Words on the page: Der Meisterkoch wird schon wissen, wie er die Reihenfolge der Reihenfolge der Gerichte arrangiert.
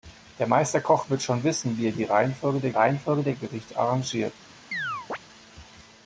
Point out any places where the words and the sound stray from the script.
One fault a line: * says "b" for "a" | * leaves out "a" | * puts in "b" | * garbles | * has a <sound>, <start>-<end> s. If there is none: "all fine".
* has a chirp, 4.7-5.2 s